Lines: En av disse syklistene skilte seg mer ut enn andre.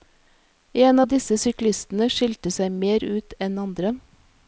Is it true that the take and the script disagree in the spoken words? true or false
false